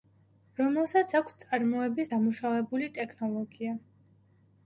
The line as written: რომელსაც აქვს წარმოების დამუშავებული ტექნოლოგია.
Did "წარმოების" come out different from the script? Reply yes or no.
no